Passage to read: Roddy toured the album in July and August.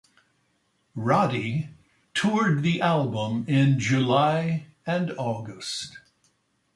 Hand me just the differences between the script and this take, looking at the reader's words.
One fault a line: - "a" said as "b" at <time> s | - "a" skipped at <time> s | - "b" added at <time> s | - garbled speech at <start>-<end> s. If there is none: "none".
none